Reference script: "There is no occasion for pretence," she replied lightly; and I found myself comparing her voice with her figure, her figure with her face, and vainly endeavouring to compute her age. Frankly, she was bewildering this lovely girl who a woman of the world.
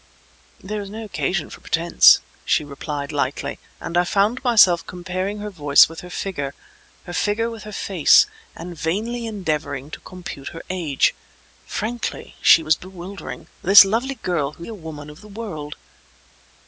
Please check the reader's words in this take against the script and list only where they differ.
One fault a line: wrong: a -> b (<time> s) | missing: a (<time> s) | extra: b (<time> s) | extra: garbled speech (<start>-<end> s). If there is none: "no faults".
no faults